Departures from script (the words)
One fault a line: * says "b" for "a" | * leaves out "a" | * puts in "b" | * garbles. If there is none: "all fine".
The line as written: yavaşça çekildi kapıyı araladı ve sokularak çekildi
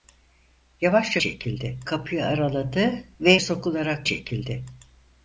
all fine